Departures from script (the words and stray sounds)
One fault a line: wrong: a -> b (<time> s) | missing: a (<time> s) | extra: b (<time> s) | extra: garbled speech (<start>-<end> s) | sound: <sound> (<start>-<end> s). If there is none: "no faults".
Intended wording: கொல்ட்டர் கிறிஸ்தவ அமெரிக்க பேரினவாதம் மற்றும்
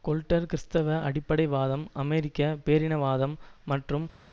extra: அடிப்படைவாதம் (1.1 s)